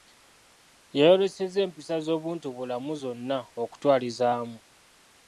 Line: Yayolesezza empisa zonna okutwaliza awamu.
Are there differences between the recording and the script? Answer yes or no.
yes